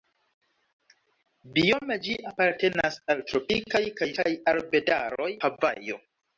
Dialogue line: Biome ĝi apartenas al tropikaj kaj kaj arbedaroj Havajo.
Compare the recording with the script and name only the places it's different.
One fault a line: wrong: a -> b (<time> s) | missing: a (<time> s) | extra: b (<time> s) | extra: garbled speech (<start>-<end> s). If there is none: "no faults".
no faults